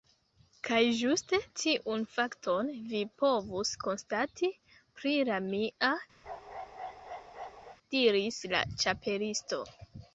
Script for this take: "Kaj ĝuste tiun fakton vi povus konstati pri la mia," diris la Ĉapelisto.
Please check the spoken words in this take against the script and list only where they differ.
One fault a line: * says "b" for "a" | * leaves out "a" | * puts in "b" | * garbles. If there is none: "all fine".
all fine